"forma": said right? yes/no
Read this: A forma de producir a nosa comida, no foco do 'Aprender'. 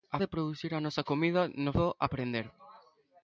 no